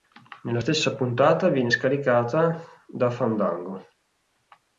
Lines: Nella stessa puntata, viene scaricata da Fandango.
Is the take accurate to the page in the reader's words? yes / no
yes